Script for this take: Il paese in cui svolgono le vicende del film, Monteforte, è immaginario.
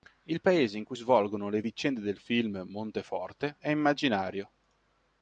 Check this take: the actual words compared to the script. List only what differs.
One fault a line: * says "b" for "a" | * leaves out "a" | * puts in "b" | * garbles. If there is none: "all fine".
all fine